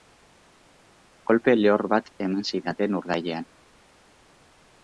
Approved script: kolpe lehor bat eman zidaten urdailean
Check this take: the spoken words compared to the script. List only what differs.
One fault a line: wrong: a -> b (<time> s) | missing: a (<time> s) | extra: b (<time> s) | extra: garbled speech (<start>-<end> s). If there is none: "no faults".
no faults